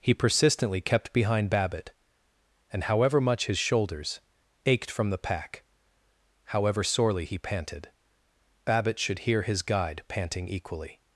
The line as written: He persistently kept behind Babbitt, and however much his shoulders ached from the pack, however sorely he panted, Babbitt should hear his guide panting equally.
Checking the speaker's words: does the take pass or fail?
pass